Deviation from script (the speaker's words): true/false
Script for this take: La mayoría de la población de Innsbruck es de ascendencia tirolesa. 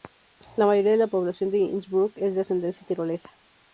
false